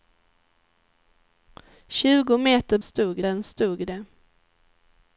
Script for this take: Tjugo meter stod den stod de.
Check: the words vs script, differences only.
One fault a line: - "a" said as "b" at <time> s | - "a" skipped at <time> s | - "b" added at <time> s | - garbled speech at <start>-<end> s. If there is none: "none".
none